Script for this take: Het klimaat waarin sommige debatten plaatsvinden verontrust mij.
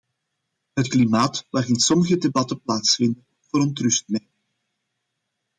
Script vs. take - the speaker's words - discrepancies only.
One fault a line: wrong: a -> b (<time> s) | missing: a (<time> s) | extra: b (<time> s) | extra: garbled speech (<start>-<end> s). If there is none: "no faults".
no faults